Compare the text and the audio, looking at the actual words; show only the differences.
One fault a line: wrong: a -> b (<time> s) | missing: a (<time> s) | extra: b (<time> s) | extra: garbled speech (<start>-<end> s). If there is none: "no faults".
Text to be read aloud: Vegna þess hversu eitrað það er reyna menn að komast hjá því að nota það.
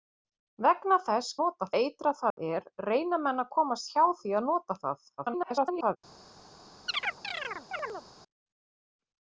wrong: hversu -> nota (1.4 s)
extra: garbled speech (5.2-6.0 s)